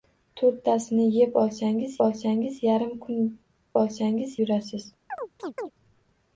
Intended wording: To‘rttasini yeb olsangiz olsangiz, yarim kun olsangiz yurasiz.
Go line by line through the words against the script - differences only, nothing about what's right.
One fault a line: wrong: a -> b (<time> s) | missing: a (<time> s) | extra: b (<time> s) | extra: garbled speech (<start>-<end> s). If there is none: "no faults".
no faults